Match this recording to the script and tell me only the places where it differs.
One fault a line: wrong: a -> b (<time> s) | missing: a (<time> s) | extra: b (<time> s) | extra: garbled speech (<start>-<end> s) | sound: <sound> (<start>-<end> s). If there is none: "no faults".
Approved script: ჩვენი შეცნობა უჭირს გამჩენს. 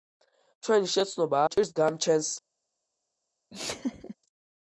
sound: laugh (3.5-4.2 s)